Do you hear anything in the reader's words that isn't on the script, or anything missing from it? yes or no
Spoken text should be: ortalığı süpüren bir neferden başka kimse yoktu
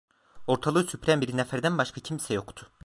no